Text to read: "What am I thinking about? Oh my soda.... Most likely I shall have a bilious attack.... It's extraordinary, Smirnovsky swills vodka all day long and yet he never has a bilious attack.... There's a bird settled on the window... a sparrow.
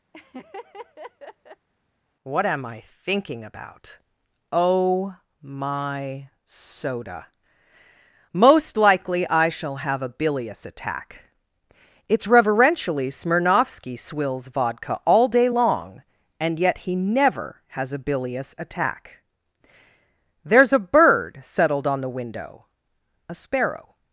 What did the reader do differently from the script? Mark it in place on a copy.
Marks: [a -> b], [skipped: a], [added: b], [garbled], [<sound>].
[laugh] "What am I thinking about? Oh my soda.... Most likely I shall have a bilious attack.... It's [extraordinary, -> reverentially] Smirnovsky swills vodka all day long and yet he never has a bilious attack.... There's a bird settled on the window... a sparrow.